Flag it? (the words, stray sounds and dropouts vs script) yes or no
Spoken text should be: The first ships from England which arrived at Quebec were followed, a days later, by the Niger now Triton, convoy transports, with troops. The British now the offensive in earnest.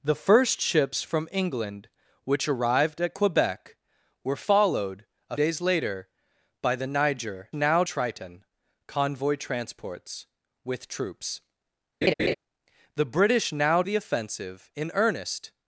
yes